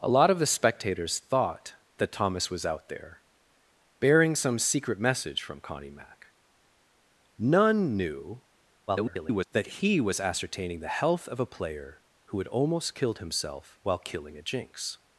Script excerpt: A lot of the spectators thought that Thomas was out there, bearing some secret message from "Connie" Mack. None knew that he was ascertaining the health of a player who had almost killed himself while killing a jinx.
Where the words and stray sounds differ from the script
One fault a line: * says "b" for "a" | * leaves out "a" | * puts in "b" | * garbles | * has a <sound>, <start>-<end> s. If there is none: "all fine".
* garbles